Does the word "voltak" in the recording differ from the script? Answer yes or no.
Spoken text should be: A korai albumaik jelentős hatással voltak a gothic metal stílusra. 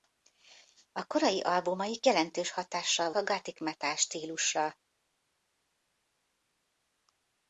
yes